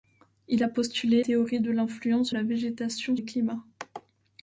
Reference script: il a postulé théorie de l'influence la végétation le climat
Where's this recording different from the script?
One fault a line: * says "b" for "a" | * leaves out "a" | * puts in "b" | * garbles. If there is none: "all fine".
all fine